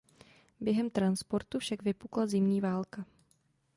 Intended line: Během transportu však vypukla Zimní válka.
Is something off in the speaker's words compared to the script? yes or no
no